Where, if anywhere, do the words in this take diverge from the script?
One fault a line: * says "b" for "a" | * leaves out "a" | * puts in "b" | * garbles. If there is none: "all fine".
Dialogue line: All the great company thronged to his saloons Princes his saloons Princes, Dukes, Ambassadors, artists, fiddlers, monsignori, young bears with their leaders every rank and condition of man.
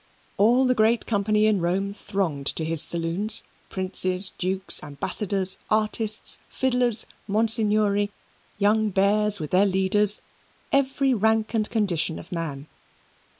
* puts in "in Rome"
* leaves out "his saloons Princes"